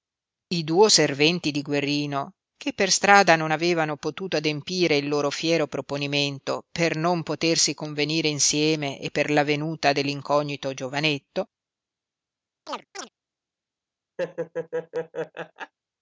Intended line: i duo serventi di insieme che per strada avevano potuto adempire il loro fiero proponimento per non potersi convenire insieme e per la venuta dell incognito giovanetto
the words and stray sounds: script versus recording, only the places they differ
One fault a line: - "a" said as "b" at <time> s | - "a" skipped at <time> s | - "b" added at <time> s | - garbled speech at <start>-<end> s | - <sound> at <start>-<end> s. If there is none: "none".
- "insieme" said as "guerrino" at 1.6 s
- "non" added at 3.3 s
- chirp at 12.7-13.1 s
- laugh at 14.2-15.7 s